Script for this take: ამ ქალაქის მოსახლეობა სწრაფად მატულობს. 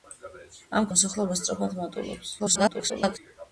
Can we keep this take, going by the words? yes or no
no